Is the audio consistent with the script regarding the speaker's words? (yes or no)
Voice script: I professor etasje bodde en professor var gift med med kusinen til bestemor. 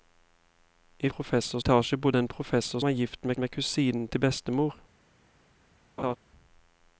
yes